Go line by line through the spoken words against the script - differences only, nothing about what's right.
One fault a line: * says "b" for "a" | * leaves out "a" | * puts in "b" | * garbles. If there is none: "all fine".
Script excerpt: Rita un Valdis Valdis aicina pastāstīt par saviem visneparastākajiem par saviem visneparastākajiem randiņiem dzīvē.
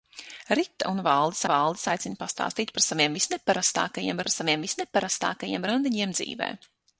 all fine